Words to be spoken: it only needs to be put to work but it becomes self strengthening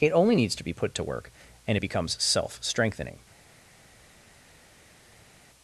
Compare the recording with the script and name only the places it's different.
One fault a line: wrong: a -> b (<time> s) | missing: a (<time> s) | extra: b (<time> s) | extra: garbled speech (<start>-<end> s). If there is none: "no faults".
wrong: but -> and (1.7 s)